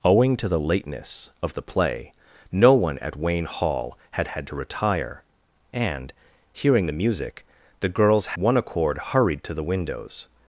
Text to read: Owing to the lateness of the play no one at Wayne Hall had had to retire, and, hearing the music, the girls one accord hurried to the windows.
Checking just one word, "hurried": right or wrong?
right